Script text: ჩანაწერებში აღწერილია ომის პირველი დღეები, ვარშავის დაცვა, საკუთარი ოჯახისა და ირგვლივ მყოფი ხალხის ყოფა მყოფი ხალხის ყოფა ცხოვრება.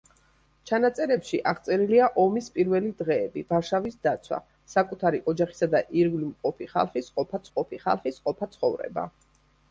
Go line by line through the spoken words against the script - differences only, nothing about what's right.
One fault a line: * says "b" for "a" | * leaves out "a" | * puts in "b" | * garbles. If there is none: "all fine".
all fine